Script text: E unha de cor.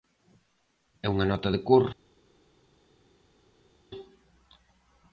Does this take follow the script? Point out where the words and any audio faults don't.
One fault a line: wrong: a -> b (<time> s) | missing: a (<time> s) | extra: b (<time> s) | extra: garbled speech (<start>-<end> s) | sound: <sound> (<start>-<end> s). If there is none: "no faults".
extra: nota (1.3 s)